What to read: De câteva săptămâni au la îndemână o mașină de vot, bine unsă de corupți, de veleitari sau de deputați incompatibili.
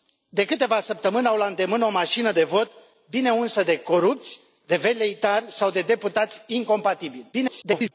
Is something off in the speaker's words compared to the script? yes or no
yes